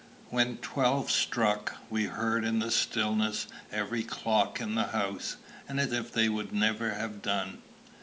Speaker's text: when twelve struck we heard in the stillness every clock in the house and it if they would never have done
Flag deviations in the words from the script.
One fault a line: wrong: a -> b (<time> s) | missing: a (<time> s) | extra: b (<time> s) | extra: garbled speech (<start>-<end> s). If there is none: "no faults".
no faults